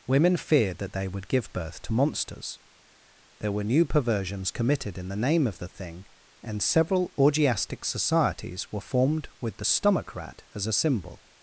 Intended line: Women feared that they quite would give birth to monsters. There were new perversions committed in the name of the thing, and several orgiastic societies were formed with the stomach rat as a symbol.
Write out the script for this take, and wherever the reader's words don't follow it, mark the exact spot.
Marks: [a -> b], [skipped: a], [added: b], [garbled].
Women feared that they [skipped: quite] would give birth to monsters. There were new perversions committed in the name of the thing, and several orgiastic societies were formed with the stomach rat as a symbol.